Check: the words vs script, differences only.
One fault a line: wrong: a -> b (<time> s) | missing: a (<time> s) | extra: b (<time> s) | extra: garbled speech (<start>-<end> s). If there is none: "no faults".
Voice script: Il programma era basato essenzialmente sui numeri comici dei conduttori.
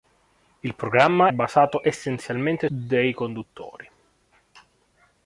missing: era (1.3 s)
missing: sui numeri comici (2.7 s)